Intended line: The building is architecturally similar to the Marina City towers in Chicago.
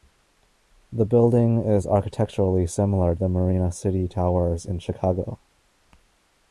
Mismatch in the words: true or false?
true